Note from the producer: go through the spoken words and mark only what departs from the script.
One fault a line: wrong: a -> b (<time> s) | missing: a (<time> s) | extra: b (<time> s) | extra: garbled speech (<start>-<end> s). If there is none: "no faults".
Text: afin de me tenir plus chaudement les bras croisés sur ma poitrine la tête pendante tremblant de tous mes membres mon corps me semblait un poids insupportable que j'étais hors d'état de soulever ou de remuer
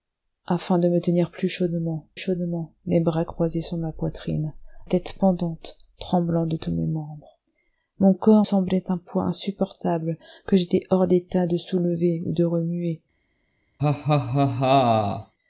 extra: chaudement (2.1 s)
missing: la (4.5 s)
missing: me (8.4 s)